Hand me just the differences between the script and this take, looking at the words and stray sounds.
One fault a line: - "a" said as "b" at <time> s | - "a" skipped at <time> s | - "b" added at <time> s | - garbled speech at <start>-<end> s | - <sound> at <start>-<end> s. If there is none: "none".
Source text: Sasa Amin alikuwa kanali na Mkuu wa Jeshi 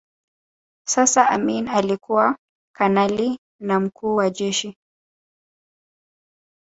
none